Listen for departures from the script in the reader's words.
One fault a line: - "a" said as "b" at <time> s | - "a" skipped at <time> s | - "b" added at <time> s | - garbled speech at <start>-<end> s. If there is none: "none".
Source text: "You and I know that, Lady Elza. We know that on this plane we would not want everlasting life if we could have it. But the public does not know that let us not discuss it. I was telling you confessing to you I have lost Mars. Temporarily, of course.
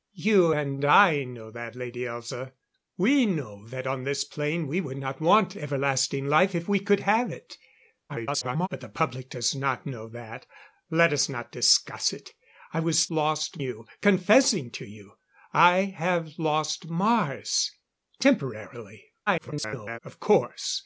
- garbled speech at 8.1-8.7 s
- "telling" said as "lost" at 13.1 s
- garbled speech at 19.3-20.0 s